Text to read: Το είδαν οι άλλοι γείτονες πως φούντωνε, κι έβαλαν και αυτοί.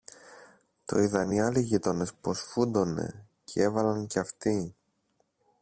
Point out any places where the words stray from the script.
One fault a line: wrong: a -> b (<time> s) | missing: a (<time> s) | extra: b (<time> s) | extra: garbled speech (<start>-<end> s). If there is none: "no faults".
no faults